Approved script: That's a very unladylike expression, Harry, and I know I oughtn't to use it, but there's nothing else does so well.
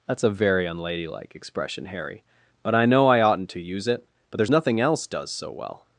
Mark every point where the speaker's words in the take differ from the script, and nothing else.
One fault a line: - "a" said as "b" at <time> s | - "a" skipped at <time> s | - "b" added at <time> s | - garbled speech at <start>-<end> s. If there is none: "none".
- "and" said as "but" at 2.6 s